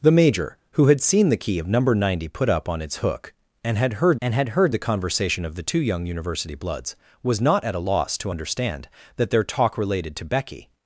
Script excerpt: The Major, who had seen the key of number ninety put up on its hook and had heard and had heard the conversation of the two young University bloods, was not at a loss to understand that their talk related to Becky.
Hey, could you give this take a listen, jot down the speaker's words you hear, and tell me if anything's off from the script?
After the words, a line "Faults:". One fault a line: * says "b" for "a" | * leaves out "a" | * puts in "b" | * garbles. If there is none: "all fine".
The Major, who had seen the key of number ninety put up on its hook and had heard and had heard the conversation of the two young University bloods, was not at a loss to understand that their talk related to Becky.
Faults:
all fine